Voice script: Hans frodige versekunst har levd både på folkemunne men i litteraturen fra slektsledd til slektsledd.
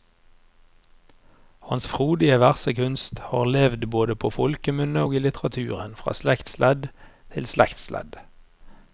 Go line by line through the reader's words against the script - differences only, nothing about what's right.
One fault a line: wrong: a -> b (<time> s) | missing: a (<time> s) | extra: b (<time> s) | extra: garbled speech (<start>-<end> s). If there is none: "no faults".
wrong: men -> og (5.0 s)